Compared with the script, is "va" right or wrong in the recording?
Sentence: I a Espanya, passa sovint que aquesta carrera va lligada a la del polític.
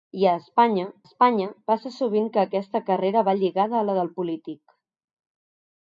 right